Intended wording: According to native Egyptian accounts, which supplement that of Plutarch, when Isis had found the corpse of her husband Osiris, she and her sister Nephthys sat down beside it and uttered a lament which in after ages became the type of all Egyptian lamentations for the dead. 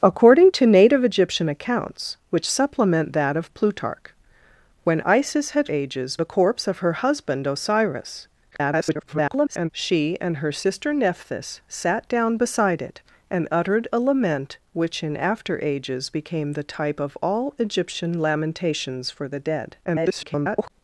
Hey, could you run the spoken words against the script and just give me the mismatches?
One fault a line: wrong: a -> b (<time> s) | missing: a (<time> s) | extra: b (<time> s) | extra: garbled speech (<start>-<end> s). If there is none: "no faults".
wrong: found -> ages (5.7 s)
extra: garbled speech (8.5-9.7 s)
extra: garbled speech (19.8-20.7 s)